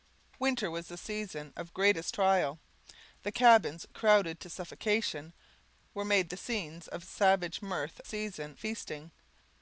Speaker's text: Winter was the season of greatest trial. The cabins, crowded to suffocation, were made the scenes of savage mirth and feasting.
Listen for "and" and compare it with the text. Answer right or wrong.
wrong